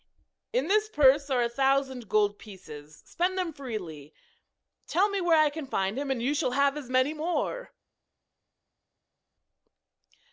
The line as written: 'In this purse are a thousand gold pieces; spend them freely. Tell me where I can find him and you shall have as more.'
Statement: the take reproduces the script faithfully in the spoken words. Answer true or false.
false